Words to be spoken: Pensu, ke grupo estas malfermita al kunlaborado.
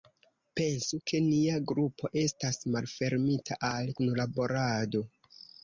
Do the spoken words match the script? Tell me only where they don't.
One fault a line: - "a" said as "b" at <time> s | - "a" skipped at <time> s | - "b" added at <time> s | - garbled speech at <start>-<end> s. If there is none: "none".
- "nia" added at 1.2 s